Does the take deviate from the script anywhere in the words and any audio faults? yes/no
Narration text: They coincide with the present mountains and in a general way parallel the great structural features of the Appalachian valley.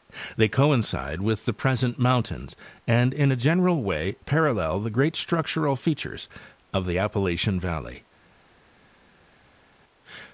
no